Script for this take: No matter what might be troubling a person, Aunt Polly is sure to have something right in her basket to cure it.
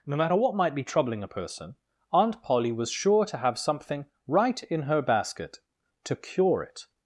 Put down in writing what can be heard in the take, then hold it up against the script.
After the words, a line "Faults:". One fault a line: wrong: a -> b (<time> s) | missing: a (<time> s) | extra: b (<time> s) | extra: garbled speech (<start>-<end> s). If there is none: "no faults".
No matter what might be troubling a person, Aunt Polly was sure to have something right in her basket to cure it.
Faults:
wrong: is -> was (2.7 s)